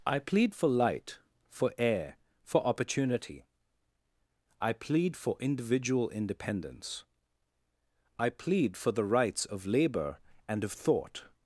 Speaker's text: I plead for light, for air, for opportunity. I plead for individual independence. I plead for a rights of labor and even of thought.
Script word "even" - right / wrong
wrong